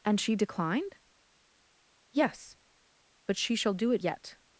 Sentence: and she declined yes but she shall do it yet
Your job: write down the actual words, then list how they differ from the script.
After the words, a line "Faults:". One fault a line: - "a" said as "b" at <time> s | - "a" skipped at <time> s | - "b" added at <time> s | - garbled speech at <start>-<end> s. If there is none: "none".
and she declined yes but she shall do it yet
Faults:
none